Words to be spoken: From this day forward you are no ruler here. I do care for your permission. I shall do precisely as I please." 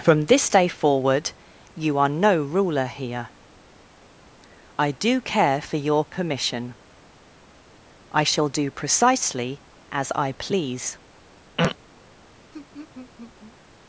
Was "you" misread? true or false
false